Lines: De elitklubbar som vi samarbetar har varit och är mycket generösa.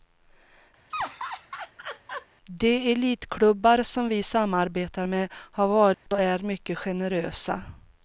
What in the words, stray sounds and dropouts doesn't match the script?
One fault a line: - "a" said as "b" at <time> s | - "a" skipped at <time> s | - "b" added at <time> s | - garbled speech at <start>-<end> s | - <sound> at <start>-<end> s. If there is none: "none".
- laugh at 0.9-2.3 s
- "med" added at 5.0 s
- dropout at 5.9-6.1 s